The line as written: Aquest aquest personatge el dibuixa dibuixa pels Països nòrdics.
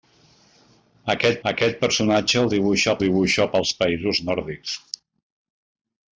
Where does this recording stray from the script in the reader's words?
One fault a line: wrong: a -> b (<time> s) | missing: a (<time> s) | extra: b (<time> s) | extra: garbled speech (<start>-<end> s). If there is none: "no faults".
no faults